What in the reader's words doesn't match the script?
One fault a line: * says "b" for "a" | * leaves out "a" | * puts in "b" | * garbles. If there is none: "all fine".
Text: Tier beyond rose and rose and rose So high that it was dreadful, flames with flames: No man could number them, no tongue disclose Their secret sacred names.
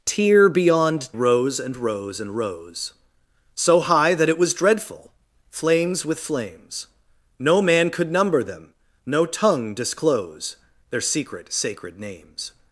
all fine